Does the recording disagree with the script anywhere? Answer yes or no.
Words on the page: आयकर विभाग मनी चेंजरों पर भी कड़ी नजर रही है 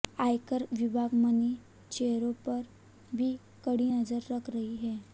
yes